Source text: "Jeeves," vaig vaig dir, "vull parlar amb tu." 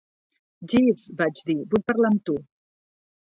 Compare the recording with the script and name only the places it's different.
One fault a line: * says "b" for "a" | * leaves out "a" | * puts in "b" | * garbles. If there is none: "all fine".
* leaves out "vaig"